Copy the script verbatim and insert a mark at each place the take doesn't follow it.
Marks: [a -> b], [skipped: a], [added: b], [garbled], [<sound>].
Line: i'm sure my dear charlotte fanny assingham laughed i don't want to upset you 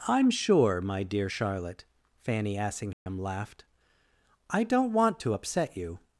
i'm sure my dear charlotte fanny assingham [dropout] laughed i don't want to upset you